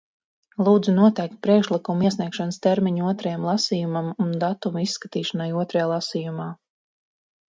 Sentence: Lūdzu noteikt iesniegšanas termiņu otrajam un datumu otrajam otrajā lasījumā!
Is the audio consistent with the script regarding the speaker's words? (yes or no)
no